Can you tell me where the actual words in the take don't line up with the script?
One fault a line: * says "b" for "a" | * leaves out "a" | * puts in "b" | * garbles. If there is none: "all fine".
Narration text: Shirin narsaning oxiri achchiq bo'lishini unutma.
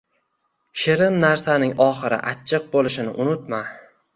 all fine